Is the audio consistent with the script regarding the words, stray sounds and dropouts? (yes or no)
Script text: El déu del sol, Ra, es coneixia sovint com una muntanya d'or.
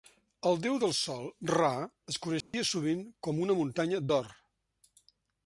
no